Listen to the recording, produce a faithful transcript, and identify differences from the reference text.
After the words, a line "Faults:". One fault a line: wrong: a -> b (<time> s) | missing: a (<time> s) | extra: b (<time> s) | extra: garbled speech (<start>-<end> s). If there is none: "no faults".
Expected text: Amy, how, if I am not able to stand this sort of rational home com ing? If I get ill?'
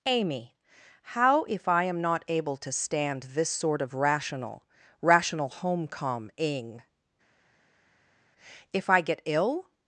Amy, how, if I am not able to stand this sort of rational rational home com ing? If I get ill?'
Faults:
extra: rational (5.0 s)